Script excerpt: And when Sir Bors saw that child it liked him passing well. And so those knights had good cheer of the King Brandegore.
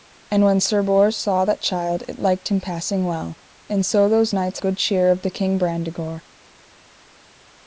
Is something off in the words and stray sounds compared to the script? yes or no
yes